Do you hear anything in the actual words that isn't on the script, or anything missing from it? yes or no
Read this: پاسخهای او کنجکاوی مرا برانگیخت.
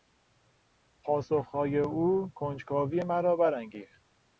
no